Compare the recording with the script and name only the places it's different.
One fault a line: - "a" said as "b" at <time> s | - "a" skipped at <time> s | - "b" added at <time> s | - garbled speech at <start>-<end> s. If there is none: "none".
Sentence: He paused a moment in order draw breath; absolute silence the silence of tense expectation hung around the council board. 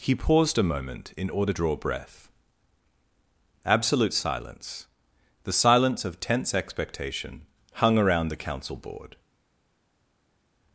none